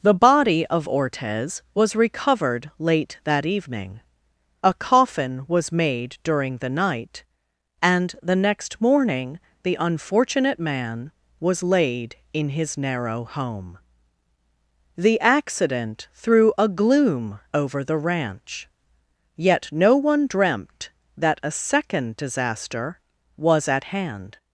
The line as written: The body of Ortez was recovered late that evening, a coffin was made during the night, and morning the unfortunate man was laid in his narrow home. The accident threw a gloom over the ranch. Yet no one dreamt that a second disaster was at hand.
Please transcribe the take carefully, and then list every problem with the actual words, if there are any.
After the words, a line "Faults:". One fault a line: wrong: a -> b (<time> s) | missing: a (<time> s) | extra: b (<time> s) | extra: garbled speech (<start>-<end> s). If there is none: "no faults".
The body of Ortez was recovered late that evening, a coffin was made during the night, and the next morning the unfortunate man was laid in his narrow home. The accident threw a gloom over the ranch. Yet no one dreamt that a second disaster was at hand.
Faults:
extra: the next (8.2 s)